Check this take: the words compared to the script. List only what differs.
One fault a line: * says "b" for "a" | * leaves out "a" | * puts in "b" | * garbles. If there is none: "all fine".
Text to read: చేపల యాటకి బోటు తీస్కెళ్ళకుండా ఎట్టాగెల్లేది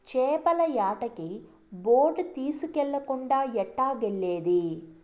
all fine